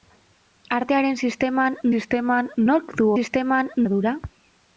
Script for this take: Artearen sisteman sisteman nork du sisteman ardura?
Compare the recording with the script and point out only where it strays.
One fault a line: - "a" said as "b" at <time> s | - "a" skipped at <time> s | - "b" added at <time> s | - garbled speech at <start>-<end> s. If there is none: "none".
none